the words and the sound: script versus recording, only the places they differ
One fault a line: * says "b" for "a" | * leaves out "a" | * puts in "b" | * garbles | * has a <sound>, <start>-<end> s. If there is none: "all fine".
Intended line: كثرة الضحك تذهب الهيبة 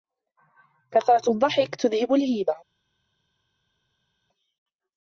all fine